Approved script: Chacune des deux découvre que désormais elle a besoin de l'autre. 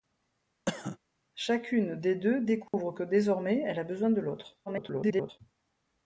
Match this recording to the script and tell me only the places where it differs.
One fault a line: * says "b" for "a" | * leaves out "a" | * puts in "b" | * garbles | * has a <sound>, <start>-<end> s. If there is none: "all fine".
* has a cough, 0.7-1.0 s
* has a dropout, 2.7-2.7 s
* garbles